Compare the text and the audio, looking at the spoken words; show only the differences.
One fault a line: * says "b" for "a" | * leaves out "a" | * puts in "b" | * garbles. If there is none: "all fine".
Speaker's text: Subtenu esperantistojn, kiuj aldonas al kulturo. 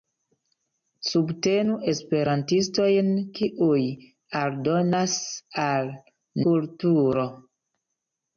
all fine